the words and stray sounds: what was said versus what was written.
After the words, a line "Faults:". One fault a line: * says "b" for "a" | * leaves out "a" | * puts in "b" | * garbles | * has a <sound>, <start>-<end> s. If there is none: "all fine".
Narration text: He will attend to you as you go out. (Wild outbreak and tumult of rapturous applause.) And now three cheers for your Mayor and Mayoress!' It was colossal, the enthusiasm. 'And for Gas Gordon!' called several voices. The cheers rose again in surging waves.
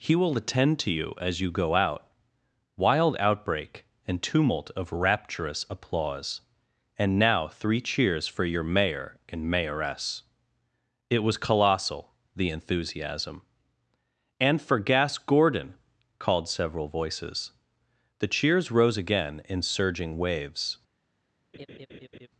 He will attend to you as you go out. (Wild outbreak and tumult of rapturous applause.) And now three cheers for your Mayor and Mayoress!' It was colossal, the enthusiasm. 'And for Gas Gordon!' called several voices. The cheers rose again in surging waves.
Faults:
* has a laugh, 21.5-22.3 s